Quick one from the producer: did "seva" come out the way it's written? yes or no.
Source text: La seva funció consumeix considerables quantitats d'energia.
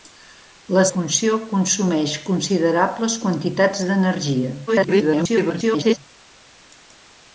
no